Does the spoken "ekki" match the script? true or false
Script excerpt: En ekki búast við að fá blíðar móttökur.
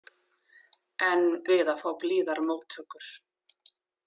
false